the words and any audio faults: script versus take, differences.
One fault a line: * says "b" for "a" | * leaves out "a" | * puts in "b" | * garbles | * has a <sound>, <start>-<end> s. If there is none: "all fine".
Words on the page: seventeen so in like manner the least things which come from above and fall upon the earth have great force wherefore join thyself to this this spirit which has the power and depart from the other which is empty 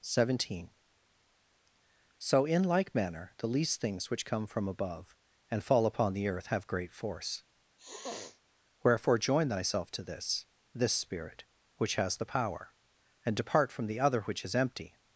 * has a sniff, 7.8-8.4 s